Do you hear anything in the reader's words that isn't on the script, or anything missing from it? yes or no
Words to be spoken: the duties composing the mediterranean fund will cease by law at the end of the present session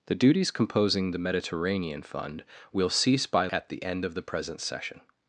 yes